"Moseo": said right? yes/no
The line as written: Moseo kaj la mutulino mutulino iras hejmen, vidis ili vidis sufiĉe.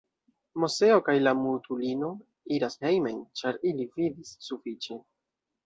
yes